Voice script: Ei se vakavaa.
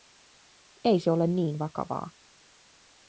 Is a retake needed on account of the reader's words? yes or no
yes